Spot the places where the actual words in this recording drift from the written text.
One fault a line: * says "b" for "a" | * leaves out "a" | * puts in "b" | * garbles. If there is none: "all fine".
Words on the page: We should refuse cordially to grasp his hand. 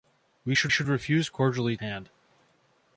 * puts in "should"
* leaves out "to grasp his"